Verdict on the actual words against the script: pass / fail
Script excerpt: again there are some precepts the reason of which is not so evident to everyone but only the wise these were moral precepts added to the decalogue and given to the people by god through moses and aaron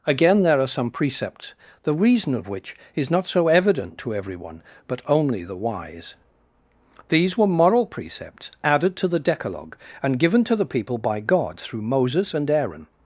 pass